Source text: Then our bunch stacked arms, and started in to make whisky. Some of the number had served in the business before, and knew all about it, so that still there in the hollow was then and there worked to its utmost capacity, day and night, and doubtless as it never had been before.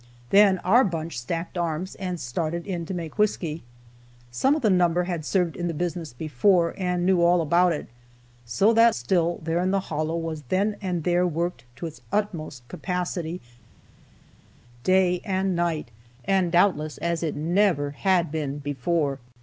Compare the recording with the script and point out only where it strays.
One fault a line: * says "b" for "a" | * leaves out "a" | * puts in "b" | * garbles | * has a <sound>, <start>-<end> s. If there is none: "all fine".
all fine